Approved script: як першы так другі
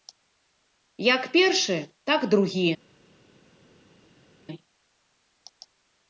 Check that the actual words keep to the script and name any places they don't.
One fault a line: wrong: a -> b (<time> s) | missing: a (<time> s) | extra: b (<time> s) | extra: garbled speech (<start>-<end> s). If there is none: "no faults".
no faults